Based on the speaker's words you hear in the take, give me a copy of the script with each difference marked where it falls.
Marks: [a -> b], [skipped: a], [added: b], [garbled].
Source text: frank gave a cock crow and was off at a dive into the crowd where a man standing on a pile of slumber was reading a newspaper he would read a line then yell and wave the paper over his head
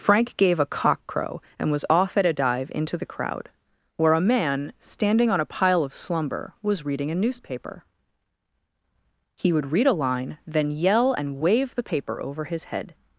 frank gave a cock crow and was off at a dive into the crowd where a man standing on a pile of slumber was reading a newspaper he would read a line then yell and wave the paper over his head